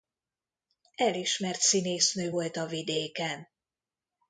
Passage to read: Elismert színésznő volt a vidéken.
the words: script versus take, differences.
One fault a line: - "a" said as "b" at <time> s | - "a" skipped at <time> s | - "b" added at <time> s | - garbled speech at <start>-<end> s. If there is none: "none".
none